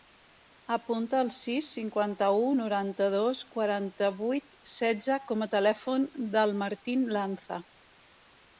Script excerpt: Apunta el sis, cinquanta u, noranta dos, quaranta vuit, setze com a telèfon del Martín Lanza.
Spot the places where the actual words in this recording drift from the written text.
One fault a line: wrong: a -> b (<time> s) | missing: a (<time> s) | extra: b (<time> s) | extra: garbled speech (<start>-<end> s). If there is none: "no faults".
no faults